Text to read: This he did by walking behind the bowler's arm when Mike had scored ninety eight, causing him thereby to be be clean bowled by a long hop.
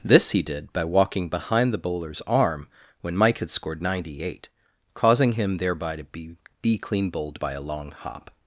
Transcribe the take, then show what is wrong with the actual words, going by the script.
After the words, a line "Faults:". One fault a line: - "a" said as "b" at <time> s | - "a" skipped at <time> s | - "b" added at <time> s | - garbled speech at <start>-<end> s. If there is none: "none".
This he did by walking behind the bowler's arm when Mike had scored ninety eight, causing him thereby to be be clean bowled by a long hop.
Faults:
none